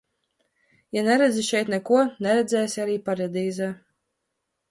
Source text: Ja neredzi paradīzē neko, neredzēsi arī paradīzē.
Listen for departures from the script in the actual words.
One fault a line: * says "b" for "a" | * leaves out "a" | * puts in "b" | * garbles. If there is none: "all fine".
* says "šeit" for "paradīzē"